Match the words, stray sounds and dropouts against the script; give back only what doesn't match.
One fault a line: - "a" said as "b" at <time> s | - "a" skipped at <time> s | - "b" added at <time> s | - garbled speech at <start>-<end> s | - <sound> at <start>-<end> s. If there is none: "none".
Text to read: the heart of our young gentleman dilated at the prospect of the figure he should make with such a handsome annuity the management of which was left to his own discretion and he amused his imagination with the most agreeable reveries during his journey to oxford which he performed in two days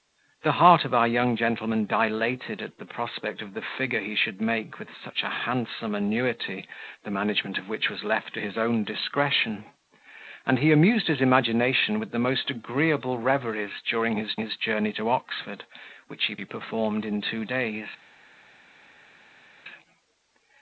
- "his" added at 14.4 s
- "he" added at 16.3 s